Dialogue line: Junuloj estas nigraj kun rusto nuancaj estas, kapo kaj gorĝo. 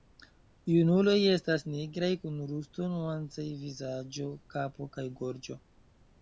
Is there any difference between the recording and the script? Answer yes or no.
yes